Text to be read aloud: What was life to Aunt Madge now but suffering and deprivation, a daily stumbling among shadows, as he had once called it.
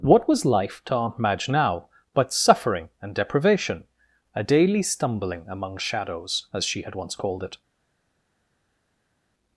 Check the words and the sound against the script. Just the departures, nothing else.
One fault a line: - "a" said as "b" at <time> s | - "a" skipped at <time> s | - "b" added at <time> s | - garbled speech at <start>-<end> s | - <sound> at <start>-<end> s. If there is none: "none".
- "he" said as "she" at 6.6 s